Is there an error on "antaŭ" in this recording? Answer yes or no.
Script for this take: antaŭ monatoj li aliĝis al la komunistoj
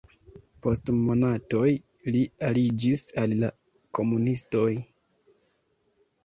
yes